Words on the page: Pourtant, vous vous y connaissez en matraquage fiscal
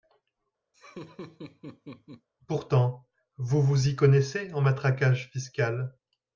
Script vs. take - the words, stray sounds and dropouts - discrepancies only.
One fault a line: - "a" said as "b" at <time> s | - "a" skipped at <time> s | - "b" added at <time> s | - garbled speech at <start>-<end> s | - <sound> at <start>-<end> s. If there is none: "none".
- laugh at 0.7-2.3 s